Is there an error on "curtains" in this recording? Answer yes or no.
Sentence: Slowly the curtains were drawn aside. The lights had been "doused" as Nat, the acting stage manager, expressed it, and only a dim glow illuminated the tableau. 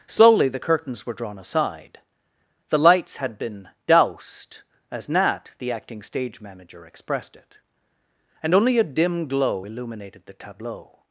no